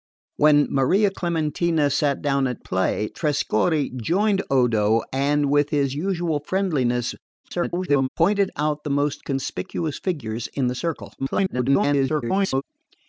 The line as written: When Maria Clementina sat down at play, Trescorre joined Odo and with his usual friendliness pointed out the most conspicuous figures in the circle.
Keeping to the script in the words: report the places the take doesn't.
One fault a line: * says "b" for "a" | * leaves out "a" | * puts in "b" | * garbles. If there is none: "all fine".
* garbles
* garbles